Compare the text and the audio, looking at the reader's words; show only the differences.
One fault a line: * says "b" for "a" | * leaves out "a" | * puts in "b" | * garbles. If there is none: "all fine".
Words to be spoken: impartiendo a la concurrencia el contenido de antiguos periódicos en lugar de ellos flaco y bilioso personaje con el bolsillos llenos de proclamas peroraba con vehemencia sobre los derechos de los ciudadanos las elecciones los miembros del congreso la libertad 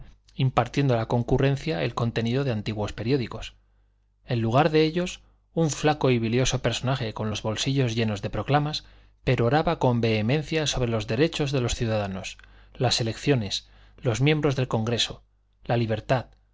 * puts in "un"
* says "los" for "el"